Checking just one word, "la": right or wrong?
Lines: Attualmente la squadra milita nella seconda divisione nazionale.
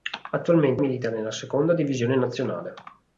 wrong